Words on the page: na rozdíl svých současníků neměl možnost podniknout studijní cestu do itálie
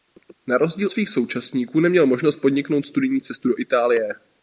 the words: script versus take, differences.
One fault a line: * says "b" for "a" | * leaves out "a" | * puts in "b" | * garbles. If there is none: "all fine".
all fine